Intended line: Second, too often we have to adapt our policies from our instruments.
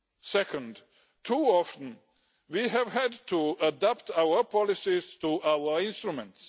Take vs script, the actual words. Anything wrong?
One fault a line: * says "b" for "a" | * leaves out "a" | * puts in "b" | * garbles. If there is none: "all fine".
* puts in "had"
* says "to" for "from"